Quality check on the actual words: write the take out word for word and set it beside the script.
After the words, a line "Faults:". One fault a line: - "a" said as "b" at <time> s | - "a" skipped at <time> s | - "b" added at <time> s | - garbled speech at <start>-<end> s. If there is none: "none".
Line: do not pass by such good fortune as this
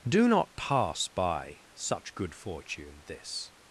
do not pass by such good fortune this
Faults:
- "as" skipped at 3.0 s